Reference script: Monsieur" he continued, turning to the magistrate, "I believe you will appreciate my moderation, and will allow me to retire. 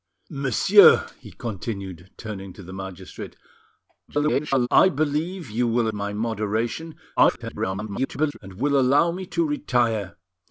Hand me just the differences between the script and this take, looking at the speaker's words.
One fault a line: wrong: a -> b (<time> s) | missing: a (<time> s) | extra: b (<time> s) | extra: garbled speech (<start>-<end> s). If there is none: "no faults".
extra: garbled speech (4.1-4.7 s)
missing: appreciate (5.9 s)
extra: garbled speech (7.2-8.4 s)